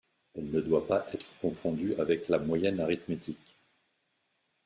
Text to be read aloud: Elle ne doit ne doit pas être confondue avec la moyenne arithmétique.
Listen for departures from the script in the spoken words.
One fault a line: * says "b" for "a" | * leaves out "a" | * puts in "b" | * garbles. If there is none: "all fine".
* leaves out "ne doit"